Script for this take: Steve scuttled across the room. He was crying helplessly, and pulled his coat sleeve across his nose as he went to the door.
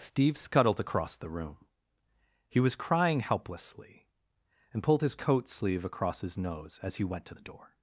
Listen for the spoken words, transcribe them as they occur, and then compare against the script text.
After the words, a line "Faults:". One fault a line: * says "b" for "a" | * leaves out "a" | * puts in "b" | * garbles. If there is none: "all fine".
Steve scuttled across the room. He was crying helplessly, and pulled his coat sleeve across his nose as he went to the door.
Faults:
all fine